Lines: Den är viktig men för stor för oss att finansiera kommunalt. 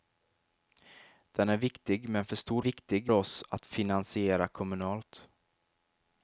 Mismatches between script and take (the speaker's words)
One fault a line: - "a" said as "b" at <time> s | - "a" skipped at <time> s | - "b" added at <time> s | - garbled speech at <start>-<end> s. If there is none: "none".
- "för" said as "viktig" at 2.6 s